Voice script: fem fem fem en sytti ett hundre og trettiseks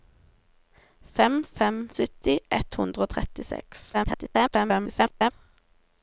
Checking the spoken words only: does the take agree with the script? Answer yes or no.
no